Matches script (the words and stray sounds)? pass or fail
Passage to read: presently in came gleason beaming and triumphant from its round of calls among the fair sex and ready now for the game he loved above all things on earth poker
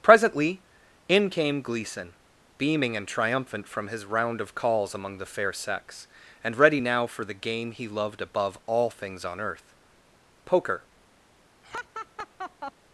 fail